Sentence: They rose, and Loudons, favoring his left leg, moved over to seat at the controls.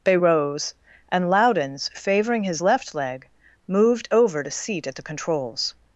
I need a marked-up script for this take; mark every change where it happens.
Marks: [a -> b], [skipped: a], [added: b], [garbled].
They rose, and Loudons, favoring his left leg, moved over to seat at the controls.